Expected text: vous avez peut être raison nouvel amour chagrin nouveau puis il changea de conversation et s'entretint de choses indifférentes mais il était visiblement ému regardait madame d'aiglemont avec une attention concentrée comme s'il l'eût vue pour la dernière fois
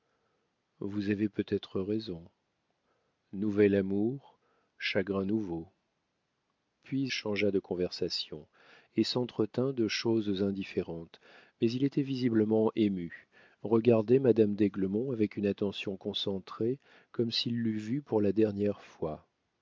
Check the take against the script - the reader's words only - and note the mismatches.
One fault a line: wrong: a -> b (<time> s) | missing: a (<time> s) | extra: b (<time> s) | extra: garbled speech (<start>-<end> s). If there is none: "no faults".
missing: il (7.1 s)